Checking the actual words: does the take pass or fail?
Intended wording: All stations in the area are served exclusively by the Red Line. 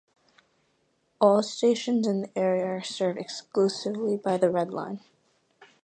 pass